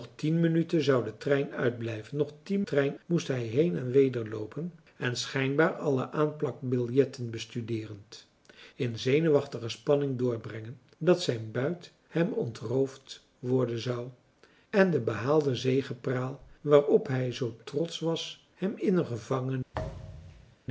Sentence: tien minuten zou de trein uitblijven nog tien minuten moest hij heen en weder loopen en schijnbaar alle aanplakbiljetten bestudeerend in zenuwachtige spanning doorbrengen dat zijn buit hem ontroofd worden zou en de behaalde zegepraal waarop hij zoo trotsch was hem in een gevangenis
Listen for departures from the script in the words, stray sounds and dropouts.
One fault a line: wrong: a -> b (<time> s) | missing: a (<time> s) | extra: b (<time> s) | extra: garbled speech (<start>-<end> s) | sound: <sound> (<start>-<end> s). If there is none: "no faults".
wrong: minuten -> trein (2.6 s)
sound: thud (19.7-20.6 s)